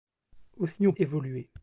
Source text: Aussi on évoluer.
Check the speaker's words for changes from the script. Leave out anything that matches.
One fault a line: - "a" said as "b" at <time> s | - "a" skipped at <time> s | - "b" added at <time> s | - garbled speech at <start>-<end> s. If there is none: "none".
none